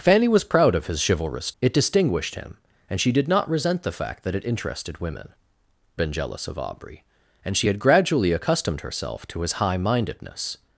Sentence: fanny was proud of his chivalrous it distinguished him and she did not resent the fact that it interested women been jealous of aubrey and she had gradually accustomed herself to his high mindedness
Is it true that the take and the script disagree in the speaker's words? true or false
false